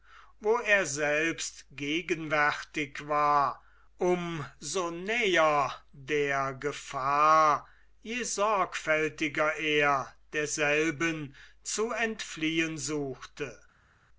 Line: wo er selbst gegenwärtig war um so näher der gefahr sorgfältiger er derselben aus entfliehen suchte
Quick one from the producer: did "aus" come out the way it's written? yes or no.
no